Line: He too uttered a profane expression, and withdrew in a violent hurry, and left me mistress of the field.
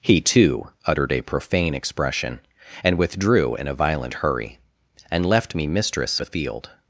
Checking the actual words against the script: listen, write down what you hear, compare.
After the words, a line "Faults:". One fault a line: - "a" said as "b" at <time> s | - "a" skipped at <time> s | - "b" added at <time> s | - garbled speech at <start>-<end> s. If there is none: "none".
He too uttered a profane expression, and withdrew in a violent hurry, and left me mistress the field.
Faults:
- "of" skipped at 6.2 s